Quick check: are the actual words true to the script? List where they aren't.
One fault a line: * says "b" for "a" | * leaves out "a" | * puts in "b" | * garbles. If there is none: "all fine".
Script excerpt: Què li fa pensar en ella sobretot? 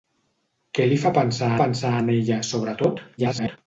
* puts in "pensar"
* garbles